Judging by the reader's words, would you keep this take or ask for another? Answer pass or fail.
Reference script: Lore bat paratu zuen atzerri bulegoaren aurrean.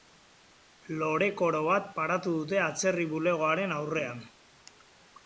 fail